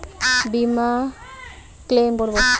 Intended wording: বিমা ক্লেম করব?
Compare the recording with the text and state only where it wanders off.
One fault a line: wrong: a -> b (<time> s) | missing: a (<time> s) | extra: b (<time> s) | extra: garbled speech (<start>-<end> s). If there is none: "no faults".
no faults